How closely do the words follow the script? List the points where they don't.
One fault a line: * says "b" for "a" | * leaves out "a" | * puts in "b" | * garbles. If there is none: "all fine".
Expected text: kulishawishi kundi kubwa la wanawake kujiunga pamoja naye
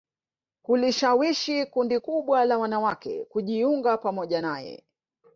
all fine